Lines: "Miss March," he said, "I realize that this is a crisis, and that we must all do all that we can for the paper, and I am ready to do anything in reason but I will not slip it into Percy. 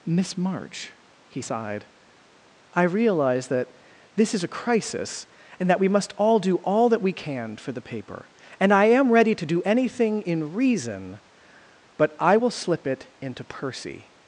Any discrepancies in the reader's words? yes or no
yes